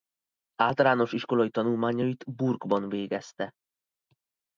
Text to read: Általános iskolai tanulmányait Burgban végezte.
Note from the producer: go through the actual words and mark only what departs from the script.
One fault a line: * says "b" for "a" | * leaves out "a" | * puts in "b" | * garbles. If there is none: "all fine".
all fine